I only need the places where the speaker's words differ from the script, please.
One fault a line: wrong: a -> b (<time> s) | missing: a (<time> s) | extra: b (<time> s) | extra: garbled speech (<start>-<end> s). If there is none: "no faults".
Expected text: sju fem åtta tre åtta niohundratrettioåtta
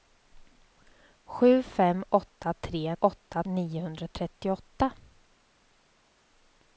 no faults